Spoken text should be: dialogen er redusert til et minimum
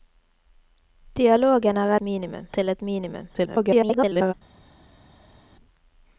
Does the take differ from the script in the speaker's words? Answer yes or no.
yes